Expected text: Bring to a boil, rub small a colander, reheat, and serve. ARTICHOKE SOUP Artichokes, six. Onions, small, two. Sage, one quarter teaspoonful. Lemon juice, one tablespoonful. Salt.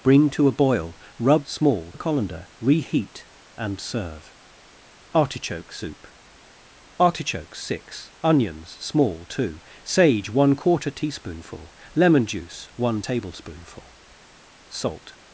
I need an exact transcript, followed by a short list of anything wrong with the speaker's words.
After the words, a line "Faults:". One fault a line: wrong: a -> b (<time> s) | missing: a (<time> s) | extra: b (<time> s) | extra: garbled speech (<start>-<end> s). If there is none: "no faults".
Bring to a boil, rub small a colander, reheat, and serve. ARTICHOKE SOUP Artichokes, six. Onions, small, two. Sage, one quarter teaspoonful. Lemon juice, one tablespoonful. Salt.
Faults:
no faults